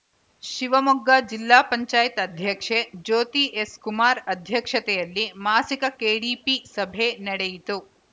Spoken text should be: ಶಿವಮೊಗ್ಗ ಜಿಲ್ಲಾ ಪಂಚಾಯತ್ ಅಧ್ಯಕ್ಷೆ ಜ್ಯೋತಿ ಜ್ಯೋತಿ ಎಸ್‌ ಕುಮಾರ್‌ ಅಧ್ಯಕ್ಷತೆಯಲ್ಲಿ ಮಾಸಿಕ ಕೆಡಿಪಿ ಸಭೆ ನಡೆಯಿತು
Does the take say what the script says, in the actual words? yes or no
no